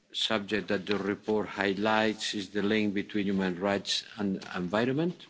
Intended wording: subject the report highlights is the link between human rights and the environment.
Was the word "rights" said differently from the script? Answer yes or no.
no